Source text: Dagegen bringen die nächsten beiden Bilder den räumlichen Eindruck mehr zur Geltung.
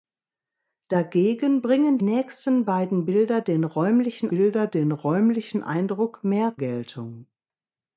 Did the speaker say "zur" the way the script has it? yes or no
no